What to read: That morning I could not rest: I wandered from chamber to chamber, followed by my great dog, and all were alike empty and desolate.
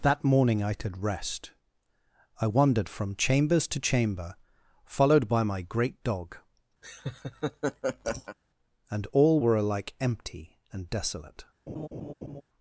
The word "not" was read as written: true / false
false